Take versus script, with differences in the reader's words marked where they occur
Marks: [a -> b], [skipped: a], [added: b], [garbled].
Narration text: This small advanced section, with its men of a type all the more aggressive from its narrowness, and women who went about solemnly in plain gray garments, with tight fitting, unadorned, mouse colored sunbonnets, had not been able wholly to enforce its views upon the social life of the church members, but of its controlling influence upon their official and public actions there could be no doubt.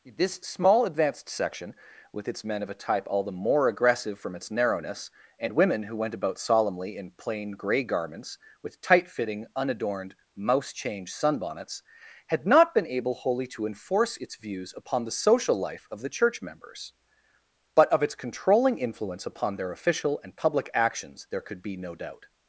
This small advanced section, with its men of a type all the more aggressive from its narrowness, and women who went about solemnly in plain gray garments, with tight fitting, unadorned, mouse [colored -> change] sunbonnets, had not been able wholly to enforce its views upon the social life of the church members, but of its controlling influence upon their official and public actions there could be no doubt.